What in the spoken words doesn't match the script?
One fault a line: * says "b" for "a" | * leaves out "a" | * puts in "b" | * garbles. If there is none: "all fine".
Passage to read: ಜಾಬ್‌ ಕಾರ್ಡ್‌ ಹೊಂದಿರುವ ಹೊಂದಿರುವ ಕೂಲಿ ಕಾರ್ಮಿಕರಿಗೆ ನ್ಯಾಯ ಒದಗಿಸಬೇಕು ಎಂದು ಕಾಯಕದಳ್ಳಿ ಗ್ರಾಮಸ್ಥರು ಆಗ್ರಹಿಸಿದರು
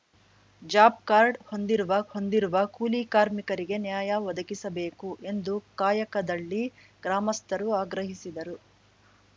all fine